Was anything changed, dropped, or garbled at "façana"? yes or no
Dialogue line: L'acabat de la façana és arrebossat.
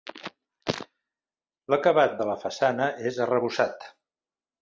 no